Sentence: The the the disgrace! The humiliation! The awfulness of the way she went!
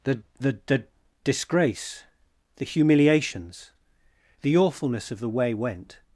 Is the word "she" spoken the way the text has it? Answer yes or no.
no